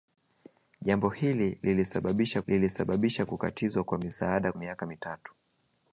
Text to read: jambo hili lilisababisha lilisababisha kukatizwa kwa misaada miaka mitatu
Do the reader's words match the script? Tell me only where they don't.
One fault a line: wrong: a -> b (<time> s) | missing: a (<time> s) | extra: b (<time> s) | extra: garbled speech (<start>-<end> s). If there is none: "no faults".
no faults